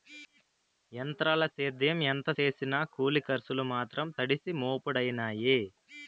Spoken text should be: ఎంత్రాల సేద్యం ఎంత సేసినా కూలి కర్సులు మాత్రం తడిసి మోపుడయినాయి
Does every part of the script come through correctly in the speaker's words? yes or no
yes